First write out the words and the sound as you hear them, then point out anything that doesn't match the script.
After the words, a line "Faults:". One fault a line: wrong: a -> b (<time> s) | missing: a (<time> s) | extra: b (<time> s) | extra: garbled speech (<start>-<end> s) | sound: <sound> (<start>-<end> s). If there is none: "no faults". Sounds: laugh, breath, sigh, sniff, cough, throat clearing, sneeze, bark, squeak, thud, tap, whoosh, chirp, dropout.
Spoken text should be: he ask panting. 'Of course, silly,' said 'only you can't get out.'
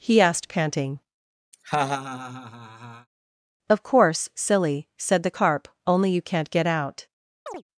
he asked panting. 'Of course, silly,' said the Carp, 'only you can't get out.'
Faults:
wrong: ask -> asked (0.2 s)
sound: laugh (1.5-3.1 s)
extra: the Carp (5.2 s)
sound: chirp (7.5-7.6 s)